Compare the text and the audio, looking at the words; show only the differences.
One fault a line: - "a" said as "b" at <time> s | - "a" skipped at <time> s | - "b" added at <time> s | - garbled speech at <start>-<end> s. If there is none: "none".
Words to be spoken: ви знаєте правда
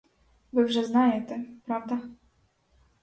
- "вже" added at 0.6 s